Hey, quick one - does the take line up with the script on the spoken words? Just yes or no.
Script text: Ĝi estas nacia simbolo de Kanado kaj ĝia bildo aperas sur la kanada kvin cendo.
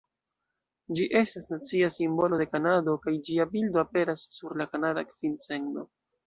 yes